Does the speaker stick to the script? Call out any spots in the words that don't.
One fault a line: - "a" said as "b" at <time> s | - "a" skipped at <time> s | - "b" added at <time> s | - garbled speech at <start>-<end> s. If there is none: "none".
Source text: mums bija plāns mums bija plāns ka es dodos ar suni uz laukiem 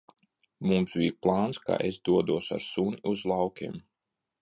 - "mums bija plāns" skipped at 1.6 s